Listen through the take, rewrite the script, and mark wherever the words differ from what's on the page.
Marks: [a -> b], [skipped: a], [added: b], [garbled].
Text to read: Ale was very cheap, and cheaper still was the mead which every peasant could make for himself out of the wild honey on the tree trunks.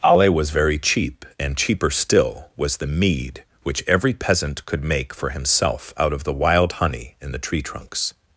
Ale was very cheap, and cheaper still was the mead which every peasant could make for himself out of the wild honey [on -> in] the tree trunks.